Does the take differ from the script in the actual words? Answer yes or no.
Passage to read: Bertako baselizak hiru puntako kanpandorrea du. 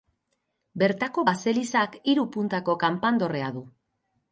no